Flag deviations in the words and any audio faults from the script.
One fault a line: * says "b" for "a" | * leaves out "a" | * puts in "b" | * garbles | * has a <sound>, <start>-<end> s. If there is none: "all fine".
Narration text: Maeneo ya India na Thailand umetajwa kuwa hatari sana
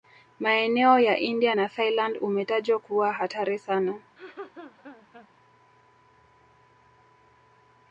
* has a laugh, 4.2-5.3 s